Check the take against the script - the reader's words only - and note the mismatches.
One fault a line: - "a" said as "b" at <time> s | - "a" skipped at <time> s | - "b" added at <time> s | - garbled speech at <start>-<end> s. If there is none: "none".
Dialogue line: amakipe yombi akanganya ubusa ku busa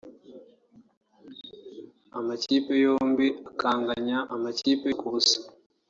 - "ubusa" said as "amakipe" at 4.3 s